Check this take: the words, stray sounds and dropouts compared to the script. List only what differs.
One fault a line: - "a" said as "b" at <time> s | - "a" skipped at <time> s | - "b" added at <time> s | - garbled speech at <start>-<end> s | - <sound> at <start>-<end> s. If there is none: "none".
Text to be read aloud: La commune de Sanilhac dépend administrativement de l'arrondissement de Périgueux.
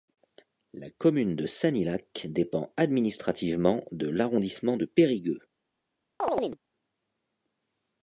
- chirp at 6.2-6.6 s